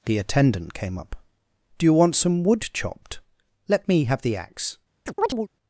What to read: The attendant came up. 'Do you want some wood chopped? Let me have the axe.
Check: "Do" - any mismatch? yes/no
no